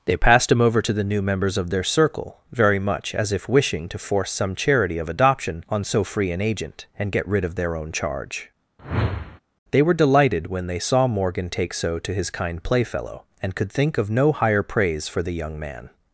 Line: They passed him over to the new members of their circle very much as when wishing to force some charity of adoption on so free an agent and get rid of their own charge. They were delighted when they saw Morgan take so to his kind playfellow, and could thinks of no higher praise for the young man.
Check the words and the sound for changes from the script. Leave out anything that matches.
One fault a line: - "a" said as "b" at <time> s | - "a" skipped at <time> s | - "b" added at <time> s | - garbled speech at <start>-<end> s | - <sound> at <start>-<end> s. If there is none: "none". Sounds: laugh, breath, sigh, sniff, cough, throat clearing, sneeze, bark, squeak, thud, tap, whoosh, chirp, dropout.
- "when" said as "if" at 3.3 s
- whoosh at 8.8-9.4 s
- "thinks" said as "think" at 13.7 s